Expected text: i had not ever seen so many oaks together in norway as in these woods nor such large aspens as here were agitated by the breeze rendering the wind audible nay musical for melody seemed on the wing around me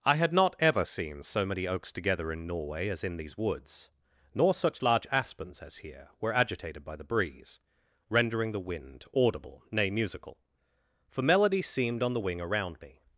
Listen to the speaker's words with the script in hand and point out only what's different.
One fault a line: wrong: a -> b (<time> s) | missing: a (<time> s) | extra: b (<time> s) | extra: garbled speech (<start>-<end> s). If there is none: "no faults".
no faults